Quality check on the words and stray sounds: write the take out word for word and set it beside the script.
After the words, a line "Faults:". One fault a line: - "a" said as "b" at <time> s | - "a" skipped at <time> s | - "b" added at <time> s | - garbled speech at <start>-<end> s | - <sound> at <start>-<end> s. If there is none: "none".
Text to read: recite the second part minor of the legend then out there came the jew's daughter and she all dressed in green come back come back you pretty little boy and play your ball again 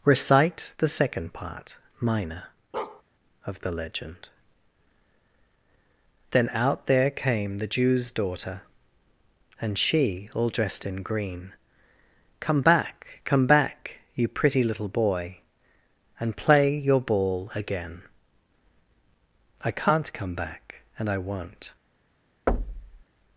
recite the second part minor of the legend then out there came the jew's daughter and she all dressed in green come back come back you pretty little boy and play your ball again i can't come back and i won't
Faults:
- bark at 2.7-3.0 s
- "i can't come back and i won't" added at 19.6 s
- thud at 22.5-23.0 s